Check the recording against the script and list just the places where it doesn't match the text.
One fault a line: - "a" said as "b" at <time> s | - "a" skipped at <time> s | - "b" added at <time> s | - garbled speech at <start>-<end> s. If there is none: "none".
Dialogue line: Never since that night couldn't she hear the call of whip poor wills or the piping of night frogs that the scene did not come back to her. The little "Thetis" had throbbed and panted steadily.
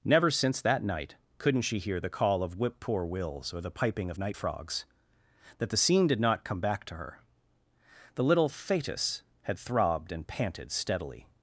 none